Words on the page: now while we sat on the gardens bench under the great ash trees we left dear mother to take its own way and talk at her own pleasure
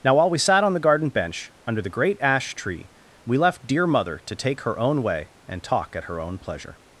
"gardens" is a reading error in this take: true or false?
true